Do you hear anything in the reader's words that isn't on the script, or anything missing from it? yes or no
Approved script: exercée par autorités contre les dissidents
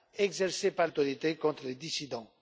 no